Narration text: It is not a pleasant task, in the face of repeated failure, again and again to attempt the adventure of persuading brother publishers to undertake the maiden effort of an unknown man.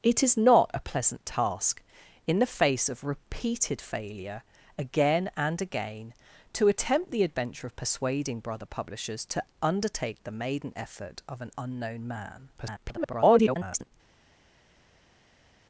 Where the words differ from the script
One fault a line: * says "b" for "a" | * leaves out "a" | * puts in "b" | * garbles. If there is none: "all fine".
* garbles